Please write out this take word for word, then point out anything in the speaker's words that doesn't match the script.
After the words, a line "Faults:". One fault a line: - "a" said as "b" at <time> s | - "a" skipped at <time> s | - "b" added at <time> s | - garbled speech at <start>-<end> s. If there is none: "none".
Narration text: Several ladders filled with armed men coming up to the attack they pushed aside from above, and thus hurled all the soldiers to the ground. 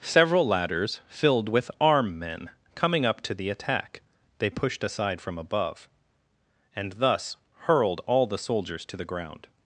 Several ladders filled with arm men coming up to the attack they pushed aside from above, and thus hurled all the soldiers to the ground.
Faults:
- "armed" said as "arm" at 1.8 s